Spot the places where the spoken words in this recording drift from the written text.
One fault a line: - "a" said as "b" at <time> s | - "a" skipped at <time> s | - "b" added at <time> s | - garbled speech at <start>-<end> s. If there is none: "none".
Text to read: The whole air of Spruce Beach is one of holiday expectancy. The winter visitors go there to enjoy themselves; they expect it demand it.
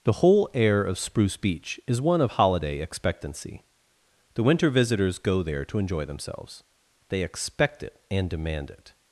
- "and" added at 8.1 s